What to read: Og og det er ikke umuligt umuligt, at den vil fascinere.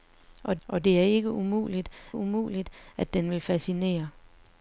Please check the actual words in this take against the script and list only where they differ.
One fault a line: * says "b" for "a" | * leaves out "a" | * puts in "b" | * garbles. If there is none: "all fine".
all fine